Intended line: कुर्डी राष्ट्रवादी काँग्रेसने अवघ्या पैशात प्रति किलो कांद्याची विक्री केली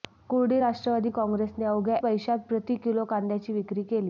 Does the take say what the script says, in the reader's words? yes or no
yes